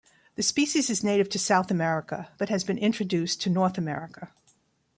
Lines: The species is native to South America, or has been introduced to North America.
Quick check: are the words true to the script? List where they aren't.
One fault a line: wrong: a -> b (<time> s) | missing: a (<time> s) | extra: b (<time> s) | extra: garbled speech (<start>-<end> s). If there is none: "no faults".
wrong: or -> but (2.4 s)